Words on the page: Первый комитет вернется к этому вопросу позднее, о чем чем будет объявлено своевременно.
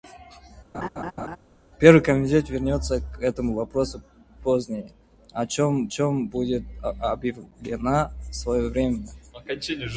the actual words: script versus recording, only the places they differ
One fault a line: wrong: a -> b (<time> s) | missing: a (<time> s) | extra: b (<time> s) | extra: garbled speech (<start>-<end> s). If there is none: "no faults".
no faults